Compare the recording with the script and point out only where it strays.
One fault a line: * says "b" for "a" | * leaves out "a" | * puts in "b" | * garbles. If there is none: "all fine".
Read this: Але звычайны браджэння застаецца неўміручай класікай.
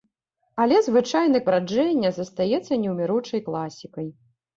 all fine